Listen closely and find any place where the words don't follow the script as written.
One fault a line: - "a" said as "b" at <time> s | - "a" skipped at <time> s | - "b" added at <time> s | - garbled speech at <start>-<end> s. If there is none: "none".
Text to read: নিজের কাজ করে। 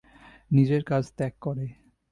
- "ত্যাগ" added at 1.2 s